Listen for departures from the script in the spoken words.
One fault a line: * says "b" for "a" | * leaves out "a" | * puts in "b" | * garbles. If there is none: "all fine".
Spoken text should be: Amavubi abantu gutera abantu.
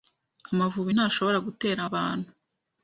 * says "ntashobora" for "abantu"